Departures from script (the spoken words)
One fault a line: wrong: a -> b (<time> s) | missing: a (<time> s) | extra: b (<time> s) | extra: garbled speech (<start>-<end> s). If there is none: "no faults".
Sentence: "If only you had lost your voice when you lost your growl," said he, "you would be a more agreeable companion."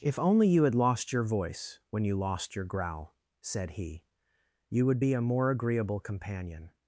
no faults